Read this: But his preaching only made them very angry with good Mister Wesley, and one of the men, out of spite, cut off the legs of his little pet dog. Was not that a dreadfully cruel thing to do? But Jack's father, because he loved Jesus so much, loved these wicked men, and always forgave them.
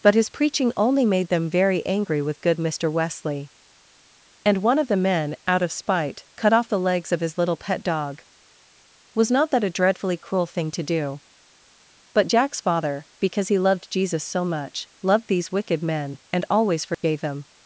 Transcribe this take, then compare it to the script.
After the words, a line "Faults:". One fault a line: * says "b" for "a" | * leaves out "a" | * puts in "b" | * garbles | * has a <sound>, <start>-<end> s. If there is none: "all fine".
But his preaching only made them very angry with good Mister Wesley, and one of the men, out of spite, cut off the legs of his little pet dog. Was not that a dreadfully cruel thing to do? But Jack's father, because he loved Jesus so much, loved these wicked men, and always forgave them.
Faults:
* has a dropout, 16.9-17.0 s